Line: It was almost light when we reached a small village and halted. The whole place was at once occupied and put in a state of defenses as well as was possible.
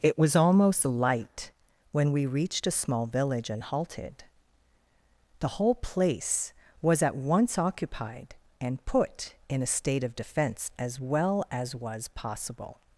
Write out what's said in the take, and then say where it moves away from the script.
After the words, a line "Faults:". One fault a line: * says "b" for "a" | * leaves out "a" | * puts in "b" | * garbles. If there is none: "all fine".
It was almost light when we reached a small village and halted. The whole place was at once occupied and put in a state of defense as well as was possible.
Faults:
* says "defense" for "defenses"